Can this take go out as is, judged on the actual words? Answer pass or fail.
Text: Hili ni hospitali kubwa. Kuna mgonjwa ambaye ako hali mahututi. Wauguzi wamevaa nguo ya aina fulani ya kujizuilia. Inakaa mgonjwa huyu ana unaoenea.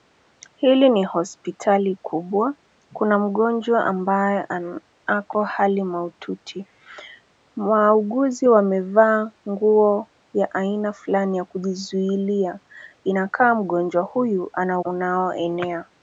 pass